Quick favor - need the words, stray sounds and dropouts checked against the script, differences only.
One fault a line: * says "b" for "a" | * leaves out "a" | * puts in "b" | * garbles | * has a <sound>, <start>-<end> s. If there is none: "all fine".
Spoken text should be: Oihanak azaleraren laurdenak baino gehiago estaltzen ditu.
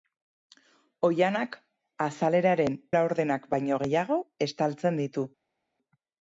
all fine